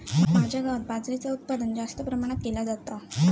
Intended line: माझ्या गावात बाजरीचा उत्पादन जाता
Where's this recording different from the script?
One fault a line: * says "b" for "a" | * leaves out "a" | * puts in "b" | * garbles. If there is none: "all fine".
* puts in "जास्त प्रमाणात केला"